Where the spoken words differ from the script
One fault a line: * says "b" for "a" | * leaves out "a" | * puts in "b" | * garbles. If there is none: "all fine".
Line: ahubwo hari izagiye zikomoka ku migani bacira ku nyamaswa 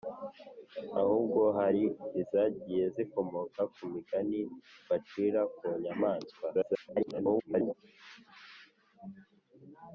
* garbles